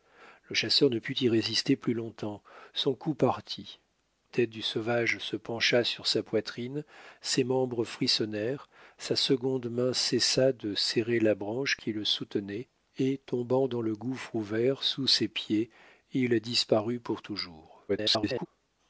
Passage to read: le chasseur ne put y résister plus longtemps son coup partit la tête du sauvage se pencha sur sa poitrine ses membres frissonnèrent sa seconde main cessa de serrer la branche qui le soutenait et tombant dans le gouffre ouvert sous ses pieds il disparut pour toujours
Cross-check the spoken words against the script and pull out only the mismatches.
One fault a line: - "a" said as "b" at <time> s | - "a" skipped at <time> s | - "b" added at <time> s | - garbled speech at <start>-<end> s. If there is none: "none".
- "la" skipped at 3.8 s
- garbled speech at 17.9-18.5 s